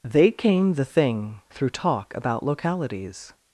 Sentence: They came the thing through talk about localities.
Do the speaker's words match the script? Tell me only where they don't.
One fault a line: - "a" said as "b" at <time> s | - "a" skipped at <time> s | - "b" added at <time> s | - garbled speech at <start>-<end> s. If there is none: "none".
none